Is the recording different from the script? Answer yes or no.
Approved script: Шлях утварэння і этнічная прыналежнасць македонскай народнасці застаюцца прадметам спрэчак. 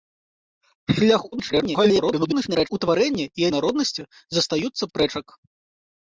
yes